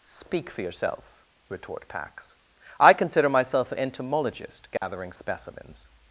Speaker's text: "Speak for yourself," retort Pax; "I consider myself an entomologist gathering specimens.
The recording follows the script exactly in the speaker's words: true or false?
true